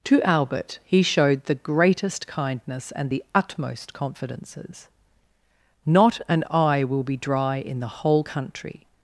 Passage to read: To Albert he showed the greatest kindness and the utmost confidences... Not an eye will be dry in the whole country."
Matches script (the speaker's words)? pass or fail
pass